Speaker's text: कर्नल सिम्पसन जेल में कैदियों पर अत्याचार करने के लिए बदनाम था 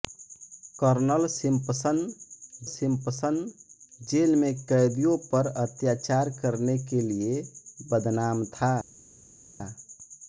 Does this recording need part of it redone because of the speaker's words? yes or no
yes